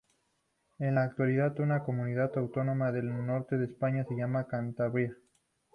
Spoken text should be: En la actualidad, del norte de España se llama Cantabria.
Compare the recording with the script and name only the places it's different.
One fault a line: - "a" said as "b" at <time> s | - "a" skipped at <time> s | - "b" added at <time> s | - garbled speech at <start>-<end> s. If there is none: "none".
- "una Comunidad Autónoma" added at 1.6 s